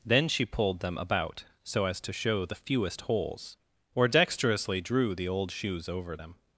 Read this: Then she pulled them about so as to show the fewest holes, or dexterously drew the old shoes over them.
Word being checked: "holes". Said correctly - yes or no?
yes